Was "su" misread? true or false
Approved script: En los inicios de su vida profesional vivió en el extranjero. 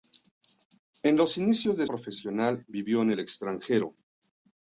true